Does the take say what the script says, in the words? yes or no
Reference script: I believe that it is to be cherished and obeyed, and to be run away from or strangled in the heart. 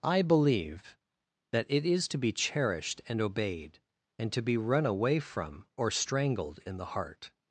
yes